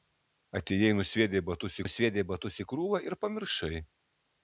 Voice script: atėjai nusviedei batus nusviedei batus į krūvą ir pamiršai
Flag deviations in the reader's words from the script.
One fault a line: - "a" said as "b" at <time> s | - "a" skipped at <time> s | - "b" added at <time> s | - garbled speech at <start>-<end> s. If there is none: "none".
none